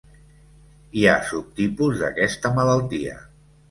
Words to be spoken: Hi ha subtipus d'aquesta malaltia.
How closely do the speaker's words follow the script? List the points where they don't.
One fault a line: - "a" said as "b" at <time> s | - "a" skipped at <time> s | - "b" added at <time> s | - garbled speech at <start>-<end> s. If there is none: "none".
none